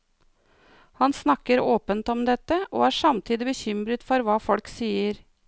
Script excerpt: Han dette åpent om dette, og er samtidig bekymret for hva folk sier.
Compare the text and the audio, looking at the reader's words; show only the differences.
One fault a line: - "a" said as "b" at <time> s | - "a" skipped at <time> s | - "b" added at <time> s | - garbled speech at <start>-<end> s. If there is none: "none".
- "dette" said as "snakker" at 1.1 s